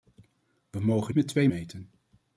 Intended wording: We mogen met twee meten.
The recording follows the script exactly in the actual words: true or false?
true